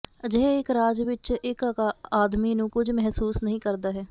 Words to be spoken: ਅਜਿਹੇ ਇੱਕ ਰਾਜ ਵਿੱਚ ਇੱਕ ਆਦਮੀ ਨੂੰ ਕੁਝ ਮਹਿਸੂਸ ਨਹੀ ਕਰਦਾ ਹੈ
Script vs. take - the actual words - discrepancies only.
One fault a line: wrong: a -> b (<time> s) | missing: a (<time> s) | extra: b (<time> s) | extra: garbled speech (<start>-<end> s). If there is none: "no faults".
no faults